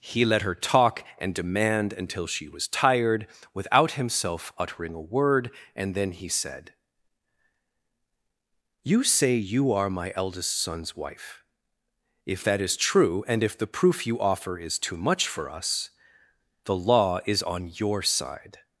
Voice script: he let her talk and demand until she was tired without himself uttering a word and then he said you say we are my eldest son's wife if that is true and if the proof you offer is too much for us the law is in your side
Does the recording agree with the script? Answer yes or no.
no